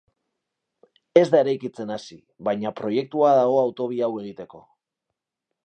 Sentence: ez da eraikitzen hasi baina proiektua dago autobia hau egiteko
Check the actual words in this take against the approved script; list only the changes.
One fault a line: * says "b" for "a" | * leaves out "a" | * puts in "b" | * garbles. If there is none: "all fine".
all fine